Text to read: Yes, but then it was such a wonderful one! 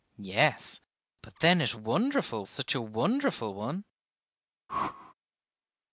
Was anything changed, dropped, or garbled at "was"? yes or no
yes